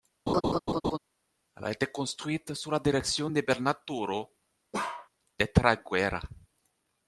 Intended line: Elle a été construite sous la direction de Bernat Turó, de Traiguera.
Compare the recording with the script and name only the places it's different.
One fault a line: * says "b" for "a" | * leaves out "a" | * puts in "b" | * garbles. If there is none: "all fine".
all fine